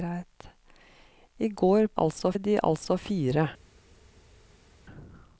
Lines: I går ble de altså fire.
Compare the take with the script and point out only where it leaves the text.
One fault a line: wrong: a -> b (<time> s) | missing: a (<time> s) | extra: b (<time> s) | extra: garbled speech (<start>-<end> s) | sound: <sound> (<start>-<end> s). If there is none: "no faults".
wrong: ble -> altså (2.0 s)